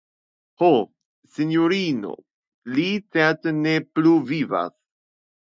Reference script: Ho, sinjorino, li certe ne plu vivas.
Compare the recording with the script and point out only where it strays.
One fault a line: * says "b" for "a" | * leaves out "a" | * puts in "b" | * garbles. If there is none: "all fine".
all fine